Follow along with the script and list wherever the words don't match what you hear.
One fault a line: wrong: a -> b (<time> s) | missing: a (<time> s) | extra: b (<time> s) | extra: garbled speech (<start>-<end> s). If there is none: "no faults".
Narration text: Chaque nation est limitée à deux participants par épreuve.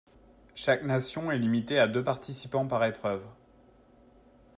no faults